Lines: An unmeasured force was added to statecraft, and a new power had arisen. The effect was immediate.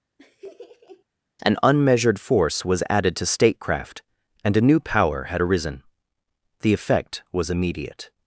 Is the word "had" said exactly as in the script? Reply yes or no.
yes